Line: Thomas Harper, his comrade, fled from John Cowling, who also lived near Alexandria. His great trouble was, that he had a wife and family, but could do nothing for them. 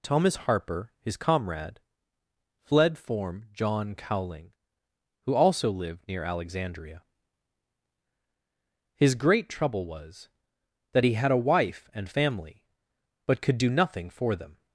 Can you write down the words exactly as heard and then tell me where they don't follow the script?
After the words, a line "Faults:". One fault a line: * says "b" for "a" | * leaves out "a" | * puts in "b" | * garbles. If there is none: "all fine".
Thomas Harper, his comrade, fled form John Cowling, who also lived near Alexandria. His great trouble was, that he had a wife and family, but could do nothing for them.
Faults:
* says "form" for "from"